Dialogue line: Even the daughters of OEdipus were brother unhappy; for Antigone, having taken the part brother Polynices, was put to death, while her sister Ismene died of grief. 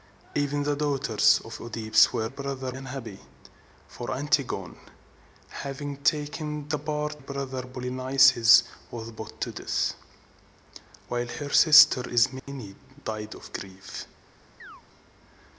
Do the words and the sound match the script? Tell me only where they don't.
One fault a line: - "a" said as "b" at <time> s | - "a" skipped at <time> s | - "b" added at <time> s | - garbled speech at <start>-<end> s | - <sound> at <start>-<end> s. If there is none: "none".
- dropout at 12.4-12.5 s
- chirp at 14.6-14.8 s